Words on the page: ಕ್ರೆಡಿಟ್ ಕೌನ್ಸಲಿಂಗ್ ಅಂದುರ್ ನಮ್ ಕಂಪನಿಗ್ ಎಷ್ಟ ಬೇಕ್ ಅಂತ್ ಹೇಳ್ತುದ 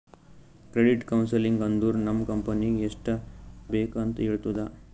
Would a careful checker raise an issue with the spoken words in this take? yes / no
no